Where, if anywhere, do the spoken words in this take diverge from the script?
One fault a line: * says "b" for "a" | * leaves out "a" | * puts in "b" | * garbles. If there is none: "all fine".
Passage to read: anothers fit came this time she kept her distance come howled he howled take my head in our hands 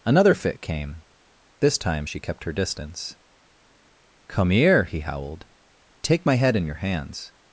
* says "another" for "anothers"
* says "here" for "howled"
* says "your" for "our"